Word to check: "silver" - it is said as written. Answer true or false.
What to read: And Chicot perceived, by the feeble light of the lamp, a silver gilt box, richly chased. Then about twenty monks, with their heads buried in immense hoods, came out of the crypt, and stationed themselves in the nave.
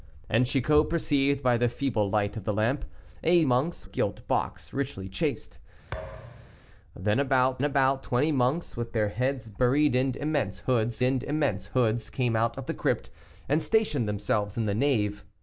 false